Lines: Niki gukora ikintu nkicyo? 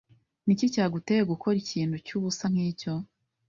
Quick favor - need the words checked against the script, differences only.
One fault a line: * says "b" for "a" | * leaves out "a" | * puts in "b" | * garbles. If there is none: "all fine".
* puts in "cyaguteye"
* puts in "cyubusa"